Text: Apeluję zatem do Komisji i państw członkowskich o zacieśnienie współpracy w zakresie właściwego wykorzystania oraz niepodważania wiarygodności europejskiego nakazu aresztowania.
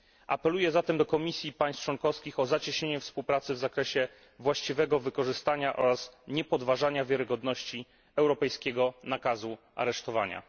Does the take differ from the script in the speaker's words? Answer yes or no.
no